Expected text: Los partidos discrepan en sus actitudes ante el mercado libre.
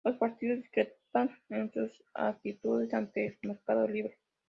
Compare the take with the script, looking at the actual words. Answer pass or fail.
pass